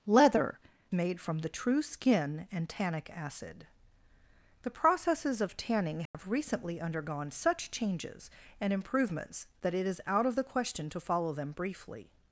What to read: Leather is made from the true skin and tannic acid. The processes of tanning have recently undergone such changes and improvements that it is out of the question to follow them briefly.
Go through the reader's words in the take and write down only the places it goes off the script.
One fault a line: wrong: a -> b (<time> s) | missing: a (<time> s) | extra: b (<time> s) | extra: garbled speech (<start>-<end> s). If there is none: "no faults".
missing: is (0.6 s)